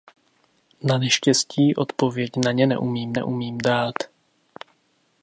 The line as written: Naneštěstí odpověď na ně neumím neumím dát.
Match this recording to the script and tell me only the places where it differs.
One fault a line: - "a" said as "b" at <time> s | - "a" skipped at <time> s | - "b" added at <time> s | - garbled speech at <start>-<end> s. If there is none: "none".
none